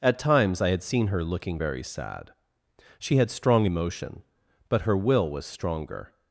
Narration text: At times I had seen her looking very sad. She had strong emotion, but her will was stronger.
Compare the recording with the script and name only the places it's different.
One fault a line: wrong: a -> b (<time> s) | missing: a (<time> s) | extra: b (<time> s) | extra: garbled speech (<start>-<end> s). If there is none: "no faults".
no faults